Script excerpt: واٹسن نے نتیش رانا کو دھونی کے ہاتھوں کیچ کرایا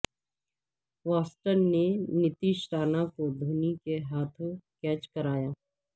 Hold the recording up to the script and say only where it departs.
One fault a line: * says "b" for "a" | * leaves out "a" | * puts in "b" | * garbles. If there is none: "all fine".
all fine